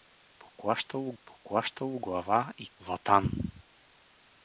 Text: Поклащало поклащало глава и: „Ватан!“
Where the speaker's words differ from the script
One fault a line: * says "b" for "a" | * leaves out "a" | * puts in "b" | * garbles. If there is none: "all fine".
all fine